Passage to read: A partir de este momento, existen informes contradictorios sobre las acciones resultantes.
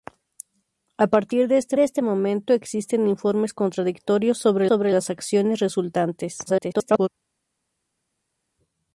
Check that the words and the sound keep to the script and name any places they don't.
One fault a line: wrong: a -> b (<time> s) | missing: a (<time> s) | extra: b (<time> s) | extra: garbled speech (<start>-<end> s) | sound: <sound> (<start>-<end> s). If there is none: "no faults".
extra: de este (1.7 s)
extra: sobre (4.6 s)
extra: garbled speech (6.5-7.1 s)